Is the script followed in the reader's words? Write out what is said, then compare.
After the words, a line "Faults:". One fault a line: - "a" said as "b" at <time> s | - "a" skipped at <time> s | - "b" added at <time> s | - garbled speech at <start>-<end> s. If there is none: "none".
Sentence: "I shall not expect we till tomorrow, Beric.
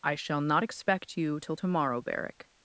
"I shall not expect you till tomorrow, Beric.
Faults:
- "we" said as "you" at 1.2 s